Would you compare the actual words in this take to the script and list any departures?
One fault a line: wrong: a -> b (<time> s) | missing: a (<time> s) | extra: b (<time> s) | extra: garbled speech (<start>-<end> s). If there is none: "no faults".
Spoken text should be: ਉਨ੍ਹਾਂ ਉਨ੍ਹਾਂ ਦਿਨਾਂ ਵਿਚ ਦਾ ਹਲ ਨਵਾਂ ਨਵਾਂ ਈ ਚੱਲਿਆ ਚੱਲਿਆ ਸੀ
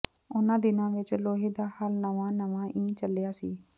missing: ਉਨ੍ਹਾਂ (0.6 s)
extra: ਲੋਹੇ (1.1 s)
missing: ਚੱਲਿਆ (3.3 s)